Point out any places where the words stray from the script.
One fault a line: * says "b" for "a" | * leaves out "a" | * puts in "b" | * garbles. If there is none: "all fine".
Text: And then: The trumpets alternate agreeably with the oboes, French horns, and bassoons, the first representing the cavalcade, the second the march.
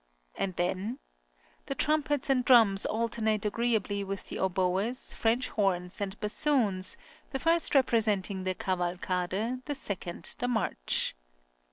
* puts in "and drums"